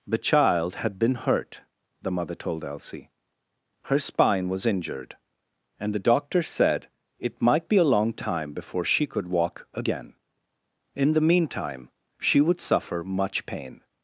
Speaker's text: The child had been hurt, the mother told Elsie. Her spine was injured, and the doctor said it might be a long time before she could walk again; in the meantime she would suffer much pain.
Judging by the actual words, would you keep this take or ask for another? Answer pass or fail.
pass